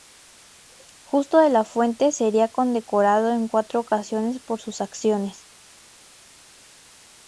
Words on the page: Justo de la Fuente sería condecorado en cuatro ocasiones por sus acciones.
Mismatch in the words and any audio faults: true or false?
false